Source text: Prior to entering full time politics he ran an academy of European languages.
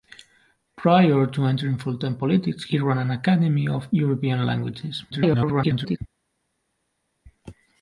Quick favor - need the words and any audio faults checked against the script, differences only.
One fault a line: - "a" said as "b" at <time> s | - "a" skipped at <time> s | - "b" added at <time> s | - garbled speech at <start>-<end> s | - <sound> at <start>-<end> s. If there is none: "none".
- garbled speech at 5.1-6.0 s